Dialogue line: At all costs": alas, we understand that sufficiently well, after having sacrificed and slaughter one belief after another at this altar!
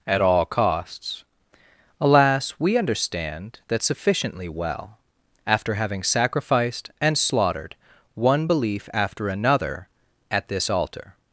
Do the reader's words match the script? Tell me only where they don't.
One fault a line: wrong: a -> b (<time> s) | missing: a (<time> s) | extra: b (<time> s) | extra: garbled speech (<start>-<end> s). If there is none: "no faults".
wrong: slaughter -> slaughtered (7.2 s)